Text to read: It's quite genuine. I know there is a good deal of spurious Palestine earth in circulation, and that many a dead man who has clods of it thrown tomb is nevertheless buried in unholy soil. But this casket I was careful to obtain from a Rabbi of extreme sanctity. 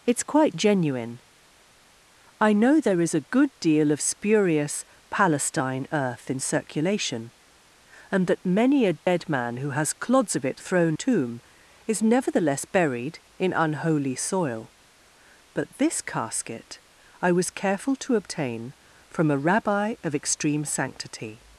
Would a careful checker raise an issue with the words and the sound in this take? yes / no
yes